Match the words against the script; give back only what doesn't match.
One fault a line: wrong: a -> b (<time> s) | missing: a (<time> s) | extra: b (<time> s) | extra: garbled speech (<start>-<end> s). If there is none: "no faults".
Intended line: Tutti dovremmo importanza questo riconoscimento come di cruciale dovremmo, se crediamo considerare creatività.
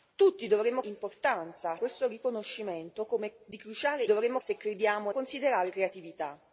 no faults